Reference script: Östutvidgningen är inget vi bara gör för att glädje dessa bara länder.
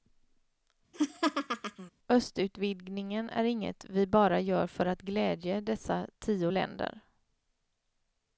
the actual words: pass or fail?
fail